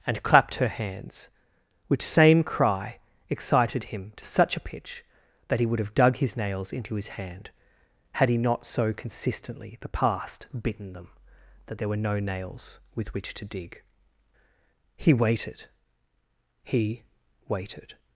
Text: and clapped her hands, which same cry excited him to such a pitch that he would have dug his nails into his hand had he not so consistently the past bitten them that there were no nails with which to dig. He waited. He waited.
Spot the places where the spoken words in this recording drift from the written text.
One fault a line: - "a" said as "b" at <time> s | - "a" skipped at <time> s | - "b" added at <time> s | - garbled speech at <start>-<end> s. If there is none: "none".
none